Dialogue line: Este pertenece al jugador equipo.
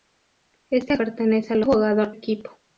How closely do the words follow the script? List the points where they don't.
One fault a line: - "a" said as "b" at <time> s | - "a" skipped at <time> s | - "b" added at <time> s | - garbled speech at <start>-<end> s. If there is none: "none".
none